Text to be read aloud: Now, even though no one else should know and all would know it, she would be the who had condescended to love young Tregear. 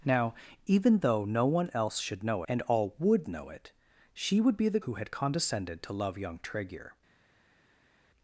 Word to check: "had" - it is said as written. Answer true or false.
true